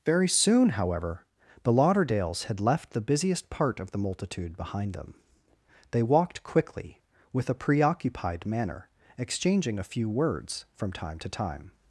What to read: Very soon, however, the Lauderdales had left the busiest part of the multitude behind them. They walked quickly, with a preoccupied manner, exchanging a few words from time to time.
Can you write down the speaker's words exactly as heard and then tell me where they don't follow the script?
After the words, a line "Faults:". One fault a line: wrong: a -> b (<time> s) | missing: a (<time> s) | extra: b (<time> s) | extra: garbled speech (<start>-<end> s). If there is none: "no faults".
Very soon, however, the Lauderdales had left the busiest part of the multitude behind them. They walked quickly, with a preoccupied manner, exchanging a few words from time to time.
Faults:
no faults